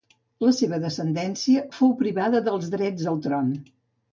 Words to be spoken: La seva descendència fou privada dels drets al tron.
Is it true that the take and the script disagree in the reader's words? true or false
false